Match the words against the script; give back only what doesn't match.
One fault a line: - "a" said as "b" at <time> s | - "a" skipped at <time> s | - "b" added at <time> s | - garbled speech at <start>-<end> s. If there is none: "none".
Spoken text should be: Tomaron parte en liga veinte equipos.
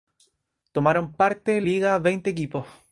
none